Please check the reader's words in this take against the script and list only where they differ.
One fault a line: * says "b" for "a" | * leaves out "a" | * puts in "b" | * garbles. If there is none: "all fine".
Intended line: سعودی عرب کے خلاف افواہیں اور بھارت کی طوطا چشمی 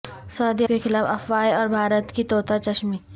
* leaves out "عرب"